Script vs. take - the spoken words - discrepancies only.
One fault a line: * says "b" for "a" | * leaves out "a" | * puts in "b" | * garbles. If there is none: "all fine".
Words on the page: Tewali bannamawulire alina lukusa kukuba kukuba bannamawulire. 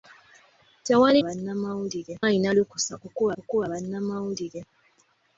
all fine